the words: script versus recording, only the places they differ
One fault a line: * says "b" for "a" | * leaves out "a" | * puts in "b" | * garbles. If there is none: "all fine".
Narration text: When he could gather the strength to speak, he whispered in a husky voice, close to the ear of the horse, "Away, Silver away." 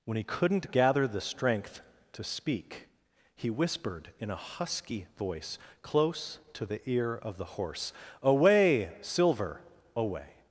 * says "couldn't" for "could"